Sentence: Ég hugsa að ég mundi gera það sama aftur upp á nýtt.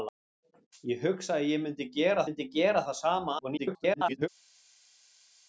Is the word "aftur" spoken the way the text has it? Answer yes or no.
no